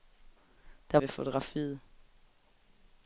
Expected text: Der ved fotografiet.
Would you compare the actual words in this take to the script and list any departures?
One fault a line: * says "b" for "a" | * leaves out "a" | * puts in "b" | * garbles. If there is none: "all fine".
all fine